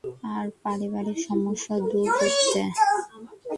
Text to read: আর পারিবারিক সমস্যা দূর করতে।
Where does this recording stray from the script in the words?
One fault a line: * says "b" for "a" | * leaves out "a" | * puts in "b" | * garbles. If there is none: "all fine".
all fine